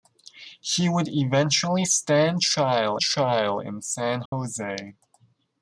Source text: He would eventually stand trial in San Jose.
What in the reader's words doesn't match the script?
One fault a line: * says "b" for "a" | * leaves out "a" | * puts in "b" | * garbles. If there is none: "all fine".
* puts in "trial"